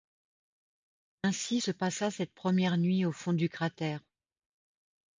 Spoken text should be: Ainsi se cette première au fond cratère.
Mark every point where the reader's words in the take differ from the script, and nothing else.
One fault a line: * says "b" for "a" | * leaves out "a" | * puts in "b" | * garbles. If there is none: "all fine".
* puts in "passa"
* puts in "nuit"
* puts in "du"